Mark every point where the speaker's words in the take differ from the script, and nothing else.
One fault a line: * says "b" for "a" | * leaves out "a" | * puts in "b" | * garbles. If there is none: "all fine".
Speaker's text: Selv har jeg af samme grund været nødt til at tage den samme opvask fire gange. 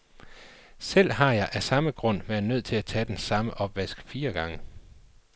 all fine